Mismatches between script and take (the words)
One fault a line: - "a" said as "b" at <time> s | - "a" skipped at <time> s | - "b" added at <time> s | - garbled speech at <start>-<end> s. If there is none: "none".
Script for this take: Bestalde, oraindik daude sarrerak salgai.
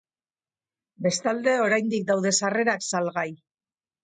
none